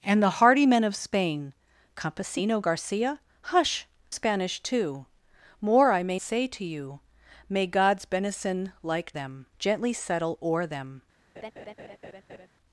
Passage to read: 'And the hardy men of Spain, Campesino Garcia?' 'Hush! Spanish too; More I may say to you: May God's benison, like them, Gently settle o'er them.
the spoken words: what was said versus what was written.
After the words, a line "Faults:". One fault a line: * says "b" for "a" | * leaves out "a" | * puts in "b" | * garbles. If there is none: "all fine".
'And the hardy men of Spain, Campesino Garcia?' 'Hush! Spanish too; More I may say to you: May God's benison, like them, Gently settle o'er them.
Faults:
all fine